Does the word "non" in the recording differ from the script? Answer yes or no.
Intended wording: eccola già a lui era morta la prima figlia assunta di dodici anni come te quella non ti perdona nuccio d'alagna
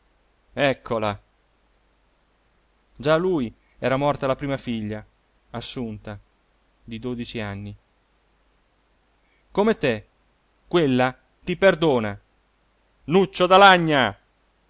yes